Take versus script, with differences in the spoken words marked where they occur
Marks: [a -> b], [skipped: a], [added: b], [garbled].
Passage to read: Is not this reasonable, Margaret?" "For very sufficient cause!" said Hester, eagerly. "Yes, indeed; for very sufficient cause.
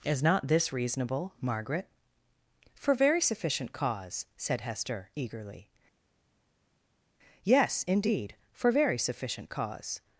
Is not this reasonable, Margaret?" "For very sufficient cause!" said Hester, eagerly. "Yes, indeed; for very sufficient cause.